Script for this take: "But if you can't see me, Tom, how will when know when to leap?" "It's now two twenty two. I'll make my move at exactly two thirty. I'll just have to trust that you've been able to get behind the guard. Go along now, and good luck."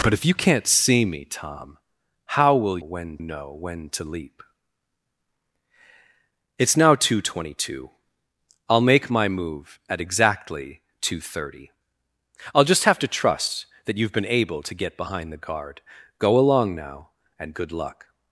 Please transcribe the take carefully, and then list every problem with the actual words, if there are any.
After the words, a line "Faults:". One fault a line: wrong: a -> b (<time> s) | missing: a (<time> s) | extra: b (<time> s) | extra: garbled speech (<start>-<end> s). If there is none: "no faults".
"But if you can't see me, Tom, how will when know when to leap?" "It's now two twenty two. I'll make my move at exactly two thirty. I'll just have to trust that you've been able to get behind the guard. Go along now, and good luck."
Faults:
no faults